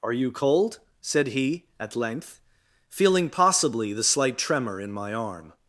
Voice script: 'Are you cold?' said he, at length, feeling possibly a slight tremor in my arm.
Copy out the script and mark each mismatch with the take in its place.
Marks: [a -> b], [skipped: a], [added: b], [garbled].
'Are you cold?' said he, at length, feeling possibly [a -> the] slight tremor in my arm.